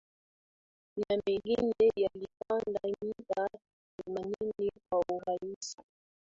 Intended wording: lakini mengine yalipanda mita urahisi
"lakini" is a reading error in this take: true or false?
true